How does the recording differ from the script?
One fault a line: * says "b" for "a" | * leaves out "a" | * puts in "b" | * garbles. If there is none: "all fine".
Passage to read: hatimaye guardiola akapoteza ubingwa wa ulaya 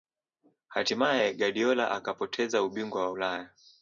all fine